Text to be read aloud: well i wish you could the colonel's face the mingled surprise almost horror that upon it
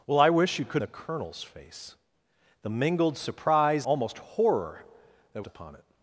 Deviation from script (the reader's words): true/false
false